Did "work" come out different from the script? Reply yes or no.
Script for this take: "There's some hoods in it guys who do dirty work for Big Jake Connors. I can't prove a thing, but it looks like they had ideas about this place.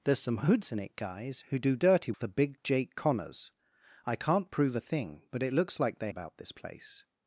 yes